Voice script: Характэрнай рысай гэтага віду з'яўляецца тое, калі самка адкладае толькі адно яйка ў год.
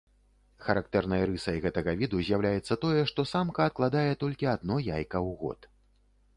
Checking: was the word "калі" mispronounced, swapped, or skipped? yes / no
yes